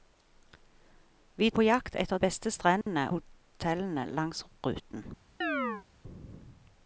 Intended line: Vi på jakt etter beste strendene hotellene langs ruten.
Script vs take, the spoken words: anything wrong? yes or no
no